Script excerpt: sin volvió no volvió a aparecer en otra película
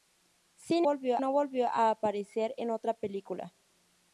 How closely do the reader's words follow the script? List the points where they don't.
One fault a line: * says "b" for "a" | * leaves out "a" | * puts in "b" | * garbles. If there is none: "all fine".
all fine